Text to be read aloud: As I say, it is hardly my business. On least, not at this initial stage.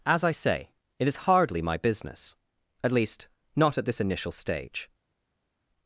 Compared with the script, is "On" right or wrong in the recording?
wrong